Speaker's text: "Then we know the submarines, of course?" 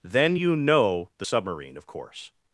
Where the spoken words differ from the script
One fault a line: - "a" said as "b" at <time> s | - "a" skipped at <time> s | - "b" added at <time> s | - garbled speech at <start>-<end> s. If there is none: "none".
- "we" said as "you" at 0.3 s
- "submarines" said as "submarine" at 1.2 s